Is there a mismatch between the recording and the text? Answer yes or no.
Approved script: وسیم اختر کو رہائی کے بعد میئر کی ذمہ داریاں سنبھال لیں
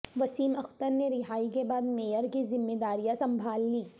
yes